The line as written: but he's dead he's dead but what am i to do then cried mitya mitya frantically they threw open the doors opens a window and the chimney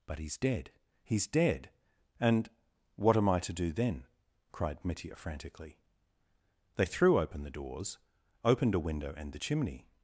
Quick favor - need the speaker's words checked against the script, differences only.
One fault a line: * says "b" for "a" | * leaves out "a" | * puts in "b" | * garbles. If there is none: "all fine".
* says "and" for "but"
* leaves out "mitya"
* says "opened" for "opens"